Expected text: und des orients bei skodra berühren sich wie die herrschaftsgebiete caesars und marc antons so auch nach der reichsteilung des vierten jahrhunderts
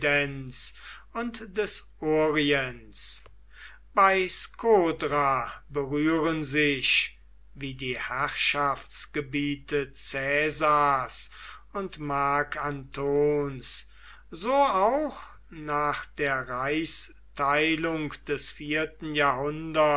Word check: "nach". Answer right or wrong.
right